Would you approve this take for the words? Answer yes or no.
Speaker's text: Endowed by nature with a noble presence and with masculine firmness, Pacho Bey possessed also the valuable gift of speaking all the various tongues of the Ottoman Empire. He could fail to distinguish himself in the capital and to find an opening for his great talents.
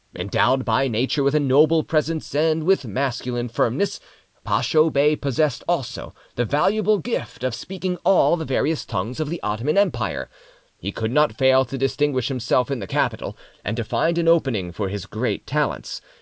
no